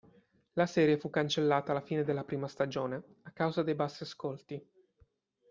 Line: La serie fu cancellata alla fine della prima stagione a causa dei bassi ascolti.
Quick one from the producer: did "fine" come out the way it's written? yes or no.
yes